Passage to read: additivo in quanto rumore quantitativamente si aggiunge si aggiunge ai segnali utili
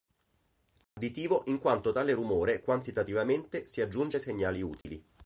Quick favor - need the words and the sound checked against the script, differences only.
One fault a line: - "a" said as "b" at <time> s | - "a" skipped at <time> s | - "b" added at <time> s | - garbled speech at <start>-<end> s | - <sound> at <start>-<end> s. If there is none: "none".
- dropout at 0.8-1.0 s
- "tale" added at 1.9 s
- "si aggiunge" skipped at 4.2 s
- dropout at 4.8-4.8 s